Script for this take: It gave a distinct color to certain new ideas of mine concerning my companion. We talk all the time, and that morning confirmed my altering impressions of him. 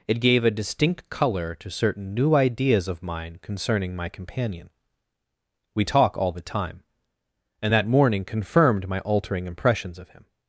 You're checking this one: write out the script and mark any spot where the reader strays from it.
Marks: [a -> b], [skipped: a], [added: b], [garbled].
It gave a distinct color to certain new ideas of mine concerning my companion. We talk all the time, and that morning confirmed my altering impressions of him.